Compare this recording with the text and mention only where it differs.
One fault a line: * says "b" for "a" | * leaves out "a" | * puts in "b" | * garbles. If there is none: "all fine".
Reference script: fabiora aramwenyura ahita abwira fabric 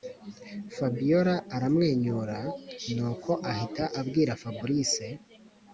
* puts in "nuko"